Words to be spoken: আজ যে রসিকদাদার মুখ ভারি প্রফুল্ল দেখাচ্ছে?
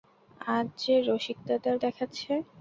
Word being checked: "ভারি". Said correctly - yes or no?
no